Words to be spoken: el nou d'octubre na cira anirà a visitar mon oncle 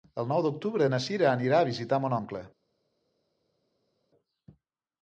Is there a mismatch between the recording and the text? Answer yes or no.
no